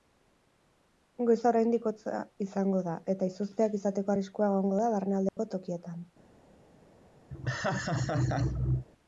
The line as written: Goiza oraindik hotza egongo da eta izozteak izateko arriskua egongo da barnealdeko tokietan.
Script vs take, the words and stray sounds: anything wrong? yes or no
yes